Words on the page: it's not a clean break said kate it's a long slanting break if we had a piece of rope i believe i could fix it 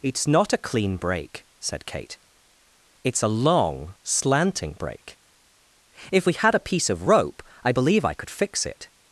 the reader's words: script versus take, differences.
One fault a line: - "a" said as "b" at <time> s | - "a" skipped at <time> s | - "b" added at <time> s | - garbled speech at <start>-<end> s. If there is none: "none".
none